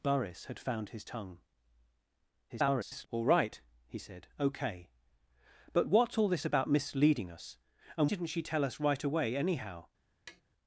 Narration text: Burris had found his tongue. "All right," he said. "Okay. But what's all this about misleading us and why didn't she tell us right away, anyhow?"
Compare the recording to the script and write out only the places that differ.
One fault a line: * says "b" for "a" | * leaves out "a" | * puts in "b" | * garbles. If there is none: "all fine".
* garbles
* leaves out "why"